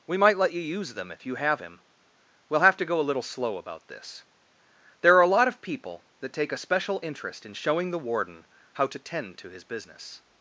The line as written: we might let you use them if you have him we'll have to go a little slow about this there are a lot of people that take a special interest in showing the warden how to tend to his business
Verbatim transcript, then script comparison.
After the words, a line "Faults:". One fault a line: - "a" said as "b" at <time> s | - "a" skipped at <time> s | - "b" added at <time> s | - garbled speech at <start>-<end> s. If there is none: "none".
we might let you use them if you have him we'll have to go a little slow about this there are a lot of people that take a special interest in showing the warden how to tend to his business
Faults:
none